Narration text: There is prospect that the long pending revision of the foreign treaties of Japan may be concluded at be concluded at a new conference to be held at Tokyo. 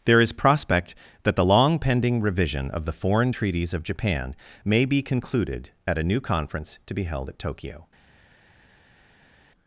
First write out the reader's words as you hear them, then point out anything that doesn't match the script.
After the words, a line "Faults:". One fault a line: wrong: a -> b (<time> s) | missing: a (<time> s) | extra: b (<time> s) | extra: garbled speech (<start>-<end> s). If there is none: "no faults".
There is prospect that the long pending revision of the foreign treaties of Japan may be concluded at a new conference to be held at Tokyo.
Faults:
missing: be concluded at (6.0 s)